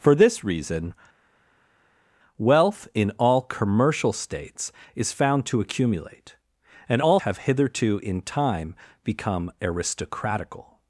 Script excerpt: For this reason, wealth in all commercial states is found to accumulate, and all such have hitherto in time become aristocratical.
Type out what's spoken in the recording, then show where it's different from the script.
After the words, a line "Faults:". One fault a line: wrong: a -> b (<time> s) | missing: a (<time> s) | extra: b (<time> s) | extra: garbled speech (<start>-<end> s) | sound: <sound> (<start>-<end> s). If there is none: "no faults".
For this reason, wealth in all commercial states is found to accumulate, and all have hitherto in time become aristocratical.
Faults:
missing: such (7.2 s)